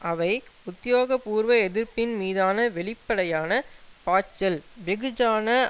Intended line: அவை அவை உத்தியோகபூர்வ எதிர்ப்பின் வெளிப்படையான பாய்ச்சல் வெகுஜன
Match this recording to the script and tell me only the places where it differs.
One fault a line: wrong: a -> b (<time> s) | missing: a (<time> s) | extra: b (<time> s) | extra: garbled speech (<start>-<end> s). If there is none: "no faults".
missing: அவை (0.3 s)
extra: மீதான (2.1 s)